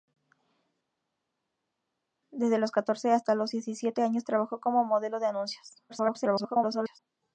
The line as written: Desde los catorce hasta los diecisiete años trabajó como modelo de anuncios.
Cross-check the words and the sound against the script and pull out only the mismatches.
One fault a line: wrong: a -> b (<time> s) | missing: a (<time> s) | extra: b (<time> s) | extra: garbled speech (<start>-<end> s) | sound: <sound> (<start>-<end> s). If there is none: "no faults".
extra: garbled speech (5.9-7.0 s)